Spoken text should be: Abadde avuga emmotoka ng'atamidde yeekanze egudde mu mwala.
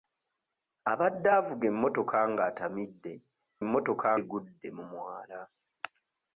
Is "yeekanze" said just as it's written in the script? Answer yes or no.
no